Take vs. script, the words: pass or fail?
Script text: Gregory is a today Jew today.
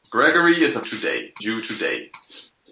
pass